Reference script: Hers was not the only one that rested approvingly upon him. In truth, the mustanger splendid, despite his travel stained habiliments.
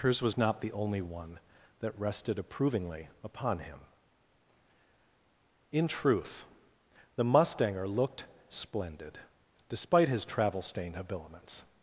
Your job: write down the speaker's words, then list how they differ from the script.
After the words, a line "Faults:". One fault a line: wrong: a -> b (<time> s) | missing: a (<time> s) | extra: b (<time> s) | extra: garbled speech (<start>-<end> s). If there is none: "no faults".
Hers was not the only one that rested approvingly upon him. In truth, the mustanger looked splendid, despite his travel stained habiliments.
Faults:
extra: looked (7.8 s)